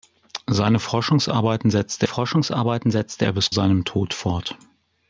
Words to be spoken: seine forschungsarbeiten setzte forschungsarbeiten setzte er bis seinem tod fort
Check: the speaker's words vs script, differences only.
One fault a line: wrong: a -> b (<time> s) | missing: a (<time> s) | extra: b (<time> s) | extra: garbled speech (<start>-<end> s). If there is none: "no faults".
no faults